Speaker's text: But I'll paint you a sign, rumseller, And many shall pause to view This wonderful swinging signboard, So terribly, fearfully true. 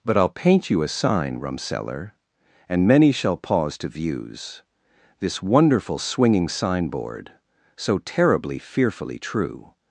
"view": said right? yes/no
no